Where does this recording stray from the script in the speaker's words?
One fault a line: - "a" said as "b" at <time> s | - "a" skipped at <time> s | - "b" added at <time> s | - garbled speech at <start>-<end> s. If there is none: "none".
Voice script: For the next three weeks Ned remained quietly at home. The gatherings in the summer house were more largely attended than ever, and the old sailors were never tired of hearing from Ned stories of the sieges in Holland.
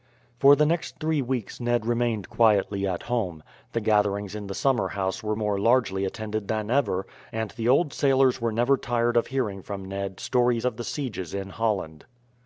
none